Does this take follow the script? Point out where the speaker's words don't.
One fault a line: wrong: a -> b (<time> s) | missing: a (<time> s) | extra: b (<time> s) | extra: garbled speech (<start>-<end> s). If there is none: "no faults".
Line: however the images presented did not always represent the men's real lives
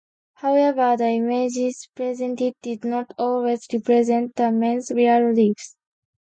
no faults